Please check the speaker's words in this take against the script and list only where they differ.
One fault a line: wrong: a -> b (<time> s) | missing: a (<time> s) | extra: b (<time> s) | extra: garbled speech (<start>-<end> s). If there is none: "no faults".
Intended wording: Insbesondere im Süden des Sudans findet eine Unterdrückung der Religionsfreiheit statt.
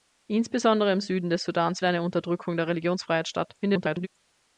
missing: findet (1.8 s)
extra: garbled speech (3.6-4.1 s)